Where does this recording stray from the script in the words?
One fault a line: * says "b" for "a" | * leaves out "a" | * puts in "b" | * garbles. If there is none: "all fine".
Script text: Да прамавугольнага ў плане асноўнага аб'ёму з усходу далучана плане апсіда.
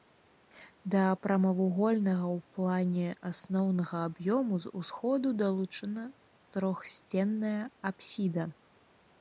* says "трохсценная" for "плане"